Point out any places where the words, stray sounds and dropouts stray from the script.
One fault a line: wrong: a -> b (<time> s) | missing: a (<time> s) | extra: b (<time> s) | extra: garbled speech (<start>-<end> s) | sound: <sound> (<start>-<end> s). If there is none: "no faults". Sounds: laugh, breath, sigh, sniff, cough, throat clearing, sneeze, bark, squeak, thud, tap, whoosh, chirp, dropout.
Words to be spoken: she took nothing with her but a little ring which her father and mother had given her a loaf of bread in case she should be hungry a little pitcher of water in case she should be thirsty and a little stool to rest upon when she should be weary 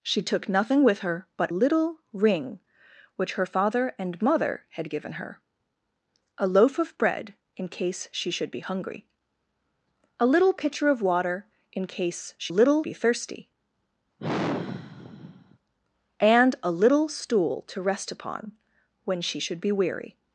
missing: a (1.5 s)
wrong: should -> little (12.5 s)
sound: sigh (14.2-15.6 s)